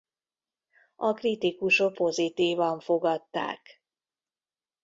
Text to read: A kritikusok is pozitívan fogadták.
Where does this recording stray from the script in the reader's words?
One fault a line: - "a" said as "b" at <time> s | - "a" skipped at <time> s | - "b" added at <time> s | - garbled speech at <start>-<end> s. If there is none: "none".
- "is" skipped at 2.0 s